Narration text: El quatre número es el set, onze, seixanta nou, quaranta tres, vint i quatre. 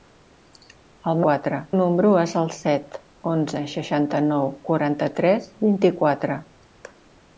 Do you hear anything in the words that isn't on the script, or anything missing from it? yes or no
no